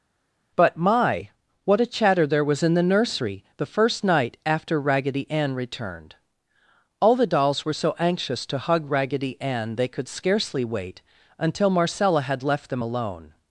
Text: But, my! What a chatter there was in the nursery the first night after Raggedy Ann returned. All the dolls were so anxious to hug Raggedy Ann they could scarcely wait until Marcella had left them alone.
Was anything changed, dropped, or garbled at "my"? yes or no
no